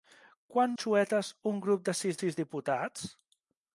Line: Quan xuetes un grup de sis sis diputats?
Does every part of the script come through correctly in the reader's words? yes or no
yes